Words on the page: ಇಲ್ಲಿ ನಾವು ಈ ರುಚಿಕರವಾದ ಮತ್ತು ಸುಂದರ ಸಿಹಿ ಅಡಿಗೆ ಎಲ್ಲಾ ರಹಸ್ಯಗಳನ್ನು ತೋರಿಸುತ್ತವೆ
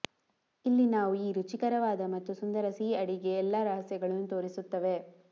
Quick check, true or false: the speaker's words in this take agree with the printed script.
true